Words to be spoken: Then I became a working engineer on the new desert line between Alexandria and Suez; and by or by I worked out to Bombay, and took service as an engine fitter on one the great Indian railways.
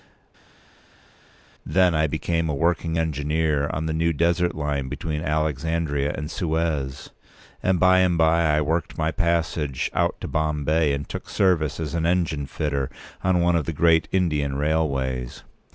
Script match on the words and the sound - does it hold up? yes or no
no